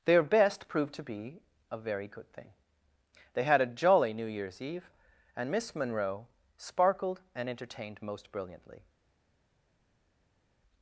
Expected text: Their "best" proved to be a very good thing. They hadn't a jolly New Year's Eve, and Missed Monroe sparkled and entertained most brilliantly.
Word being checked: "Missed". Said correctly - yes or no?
no